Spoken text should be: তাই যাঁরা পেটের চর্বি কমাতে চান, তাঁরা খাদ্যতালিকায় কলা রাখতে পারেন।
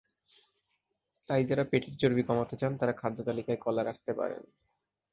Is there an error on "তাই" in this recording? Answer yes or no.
no